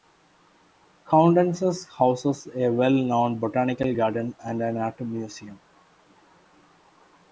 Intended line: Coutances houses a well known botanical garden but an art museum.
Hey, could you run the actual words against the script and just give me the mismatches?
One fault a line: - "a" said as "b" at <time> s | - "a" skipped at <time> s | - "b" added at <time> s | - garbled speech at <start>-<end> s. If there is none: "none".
- "but" said as "and" at 4.4 s